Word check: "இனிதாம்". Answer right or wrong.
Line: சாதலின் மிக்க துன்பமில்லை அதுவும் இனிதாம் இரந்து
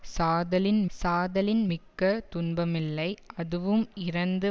wrong